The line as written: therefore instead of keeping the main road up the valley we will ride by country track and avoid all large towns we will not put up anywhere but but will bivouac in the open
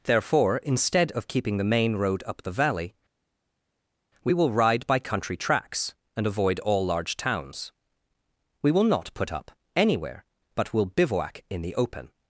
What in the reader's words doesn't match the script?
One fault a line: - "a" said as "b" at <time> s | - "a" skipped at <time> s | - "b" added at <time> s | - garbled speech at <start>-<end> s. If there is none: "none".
- "track" said as "tracks" at 5.4 s
- "but" skipped at 10.7 s